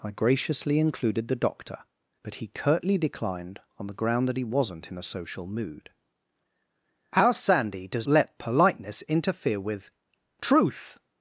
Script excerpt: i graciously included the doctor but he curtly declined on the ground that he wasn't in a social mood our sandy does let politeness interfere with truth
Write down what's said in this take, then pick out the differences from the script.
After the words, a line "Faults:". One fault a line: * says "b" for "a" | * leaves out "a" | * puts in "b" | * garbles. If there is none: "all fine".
i graciously included the doctor but he curtly declined on the ground that he wasn't in a social mood our sandy does let politeness interfere with truth
Faults:
all fine